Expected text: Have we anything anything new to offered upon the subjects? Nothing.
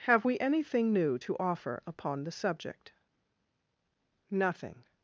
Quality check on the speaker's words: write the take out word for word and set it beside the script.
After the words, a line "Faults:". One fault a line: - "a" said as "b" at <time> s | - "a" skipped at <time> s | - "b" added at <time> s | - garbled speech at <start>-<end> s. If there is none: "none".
Have we anything new to offer upon the subject? Nothing.
Faults:
- "anything" skipped at 0.9 s
- "offered" said as "offer" at 1.4 s
- "subjects" said as "subject" at 2.3 s